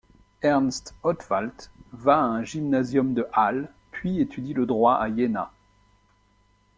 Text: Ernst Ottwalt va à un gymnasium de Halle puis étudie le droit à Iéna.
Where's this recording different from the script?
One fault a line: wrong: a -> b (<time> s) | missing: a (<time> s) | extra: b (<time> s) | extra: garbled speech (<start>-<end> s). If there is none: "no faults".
no faults